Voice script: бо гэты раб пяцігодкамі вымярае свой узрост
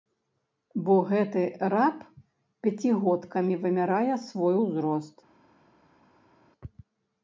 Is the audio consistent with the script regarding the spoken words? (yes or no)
yes